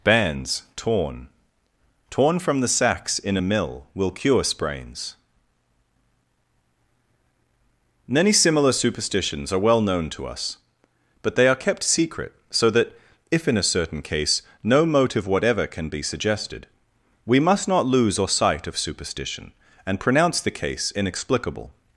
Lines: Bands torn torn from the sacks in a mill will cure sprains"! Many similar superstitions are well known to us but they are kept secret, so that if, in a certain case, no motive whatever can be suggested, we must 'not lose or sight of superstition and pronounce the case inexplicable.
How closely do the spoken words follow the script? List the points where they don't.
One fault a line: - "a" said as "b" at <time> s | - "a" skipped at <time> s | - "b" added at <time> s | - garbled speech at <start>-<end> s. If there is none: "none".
none